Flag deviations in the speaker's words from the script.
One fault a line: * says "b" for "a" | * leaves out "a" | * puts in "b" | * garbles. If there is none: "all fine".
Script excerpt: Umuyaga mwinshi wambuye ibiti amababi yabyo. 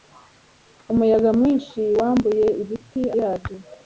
* leaves out "amababi"